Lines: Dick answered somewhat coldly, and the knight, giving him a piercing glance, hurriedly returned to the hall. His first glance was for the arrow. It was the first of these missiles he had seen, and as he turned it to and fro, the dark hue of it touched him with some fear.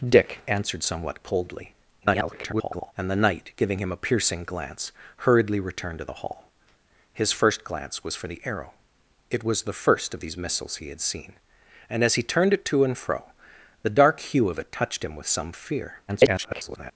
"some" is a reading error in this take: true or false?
false